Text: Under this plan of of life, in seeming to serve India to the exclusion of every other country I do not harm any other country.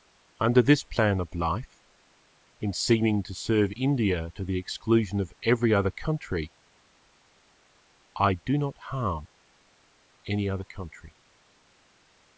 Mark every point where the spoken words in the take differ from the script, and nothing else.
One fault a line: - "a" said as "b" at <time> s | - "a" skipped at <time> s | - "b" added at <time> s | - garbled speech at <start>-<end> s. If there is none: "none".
- "of" skipped at 1.4 s